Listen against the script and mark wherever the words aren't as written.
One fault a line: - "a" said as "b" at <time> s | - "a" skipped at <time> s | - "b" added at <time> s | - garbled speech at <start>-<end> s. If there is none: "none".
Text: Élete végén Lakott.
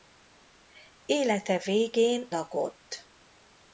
none